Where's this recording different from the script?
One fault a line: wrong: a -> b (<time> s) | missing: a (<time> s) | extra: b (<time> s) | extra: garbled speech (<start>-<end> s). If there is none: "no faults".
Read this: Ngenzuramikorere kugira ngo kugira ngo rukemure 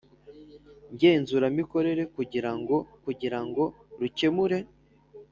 no faults